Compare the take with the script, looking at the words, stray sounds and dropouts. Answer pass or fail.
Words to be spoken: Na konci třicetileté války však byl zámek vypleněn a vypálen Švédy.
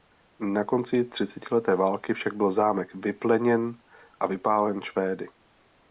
pass